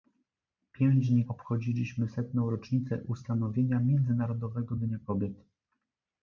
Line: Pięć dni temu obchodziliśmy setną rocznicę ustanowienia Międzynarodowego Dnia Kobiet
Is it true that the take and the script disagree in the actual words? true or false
true